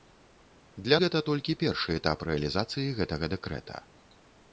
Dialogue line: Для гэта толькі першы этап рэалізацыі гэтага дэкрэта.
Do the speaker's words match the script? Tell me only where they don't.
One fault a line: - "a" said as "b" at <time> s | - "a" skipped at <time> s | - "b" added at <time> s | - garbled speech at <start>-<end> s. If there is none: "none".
none